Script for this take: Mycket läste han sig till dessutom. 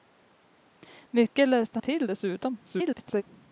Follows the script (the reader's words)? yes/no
no